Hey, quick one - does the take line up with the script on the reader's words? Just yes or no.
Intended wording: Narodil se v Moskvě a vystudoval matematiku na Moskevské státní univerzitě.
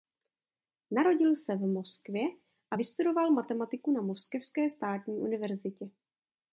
yes